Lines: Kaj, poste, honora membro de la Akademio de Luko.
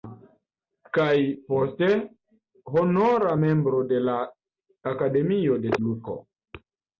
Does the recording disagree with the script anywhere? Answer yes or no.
no